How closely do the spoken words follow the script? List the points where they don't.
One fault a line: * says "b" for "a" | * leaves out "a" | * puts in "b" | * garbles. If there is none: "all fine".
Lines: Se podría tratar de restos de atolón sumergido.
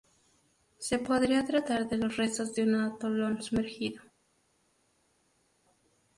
* puts in "los"
* puts in "un"